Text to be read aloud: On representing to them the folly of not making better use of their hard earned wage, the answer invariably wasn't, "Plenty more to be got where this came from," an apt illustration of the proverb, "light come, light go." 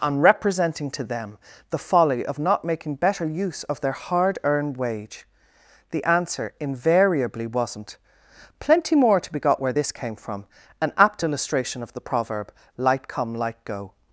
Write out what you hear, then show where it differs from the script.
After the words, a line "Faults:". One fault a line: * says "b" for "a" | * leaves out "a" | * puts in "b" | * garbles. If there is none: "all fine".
On representing to them the folly of not making better use of their hard earned wage, the answer invariably wasn't, "Plenty more to be got where this came from," an apt illustration of the proverb, "light come, light go."
Faults:
all fine